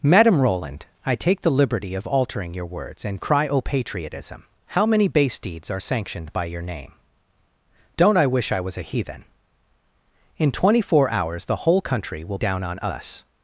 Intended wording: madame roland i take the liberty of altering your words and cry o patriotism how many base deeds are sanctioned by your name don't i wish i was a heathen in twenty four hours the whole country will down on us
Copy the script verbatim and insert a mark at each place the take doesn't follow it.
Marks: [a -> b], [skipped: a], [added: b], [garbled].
madame roland i take the liberty of altering your words and cry o patriotism how many base deeds are sanctioned by your name don't i wish i was a heathen in twenty four hours the whole country will down on us